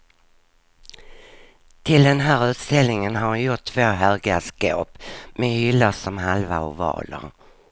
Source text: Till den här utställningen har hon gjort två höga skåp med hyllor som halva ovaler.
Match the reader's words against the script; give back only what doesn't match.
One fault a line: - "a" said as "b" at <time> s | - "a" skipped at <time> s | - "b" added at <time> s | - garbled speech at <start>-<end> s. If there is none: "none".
none